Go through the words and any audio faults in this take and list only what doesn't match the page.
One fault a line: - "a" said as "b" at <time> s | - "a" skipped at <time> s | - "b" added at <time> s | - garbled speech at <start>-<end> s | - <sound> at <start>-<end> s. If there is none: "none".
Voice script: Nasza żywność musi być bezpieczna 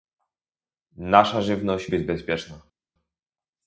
- "musi" skipped at 1.9 s